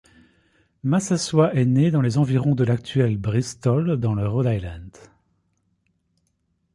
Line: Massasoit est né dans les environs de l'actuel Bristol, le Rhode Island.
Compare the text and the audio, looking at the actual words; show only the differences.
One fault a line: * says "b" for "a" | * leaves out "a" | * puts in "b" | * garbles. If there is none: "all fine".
* puts in "dans"